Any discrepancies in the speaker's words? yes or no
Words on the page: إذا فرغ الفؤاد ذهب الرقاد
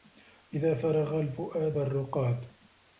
yes